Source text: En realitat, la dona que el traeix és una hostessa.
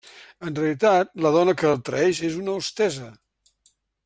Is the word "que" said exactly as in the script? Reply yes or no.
yes